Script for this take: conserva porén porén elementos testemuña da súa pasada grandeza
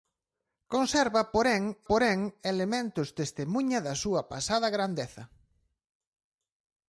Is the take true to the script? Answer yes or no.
yes